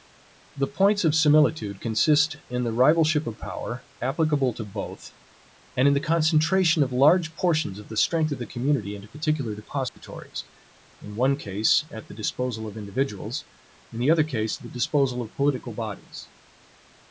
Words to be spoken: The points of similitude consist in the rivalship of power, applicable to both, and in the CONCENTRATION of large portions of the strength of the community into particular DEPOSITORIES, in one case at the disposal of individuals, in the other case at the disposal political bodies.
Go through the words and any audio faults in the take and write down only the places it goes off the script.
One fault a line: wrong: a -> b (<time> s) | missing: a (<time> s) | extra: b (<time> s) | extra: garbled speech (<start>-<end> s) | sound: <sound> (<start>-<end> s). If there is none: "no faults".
sound: dropout (9.9-10.0 s)
extra: of (15.2 s)